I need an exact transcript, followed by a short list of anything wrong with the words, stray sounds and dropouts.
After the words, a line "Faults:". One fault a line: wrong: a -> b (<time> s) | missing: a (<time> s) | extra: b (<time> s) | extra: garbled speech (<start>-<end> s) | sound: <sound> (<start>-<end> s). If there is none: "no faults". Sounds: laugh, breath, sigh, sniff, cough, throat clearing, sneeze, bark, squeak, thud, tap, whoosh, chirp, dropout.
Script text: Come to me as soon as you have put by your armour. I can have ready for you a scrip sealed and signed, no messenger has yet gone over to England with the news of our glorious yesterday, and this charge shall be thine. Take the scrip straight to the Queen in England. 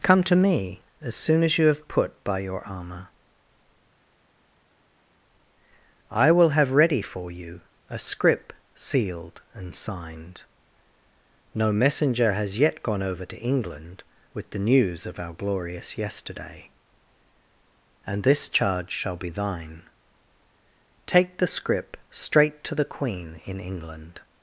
Come to me as soon as you have put by your armour. I will have ready for you a scrip sealed and signed, no messenger has yet gone over to England with the news of our glorious yesterday, and this charge shall be thine. Take the scrip straight to the Queen in England.
Faults:
wrong: can -> will (6.3 s)